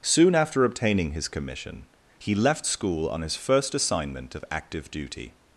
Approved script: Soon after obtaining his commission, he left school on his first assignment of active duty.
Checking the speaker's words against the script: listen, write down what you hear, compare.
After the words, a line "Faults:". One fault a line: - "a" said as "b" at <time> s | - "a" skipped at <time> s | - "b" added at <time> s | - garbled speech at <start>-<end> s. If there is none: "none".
Soon after obtaining his commission, he left school on his first assignment of active duty.
Faults:
none